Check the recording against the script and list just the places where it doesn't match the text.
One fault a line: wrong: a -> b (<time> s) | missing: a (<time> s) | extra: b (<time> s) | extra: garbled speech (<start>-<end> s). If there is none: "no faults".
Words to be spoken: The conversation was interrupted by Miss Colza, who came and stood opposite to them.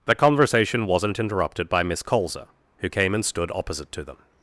wrong: was -> wasn't (0.9 s)